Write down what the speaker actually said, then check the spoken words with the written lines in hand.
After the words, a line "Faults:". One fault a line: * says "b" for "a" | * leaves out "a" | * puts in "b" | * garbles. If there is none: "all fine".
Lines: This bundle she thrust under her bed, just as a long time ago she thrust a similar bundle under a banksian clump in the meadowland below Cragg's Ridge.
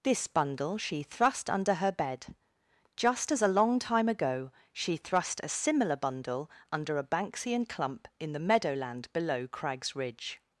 This bundle she thrust under her bed, just as a long time ago she thrust a similar bundle under a banksian clump in the meadowland below Cragg's Ridge.
Faults:
all fine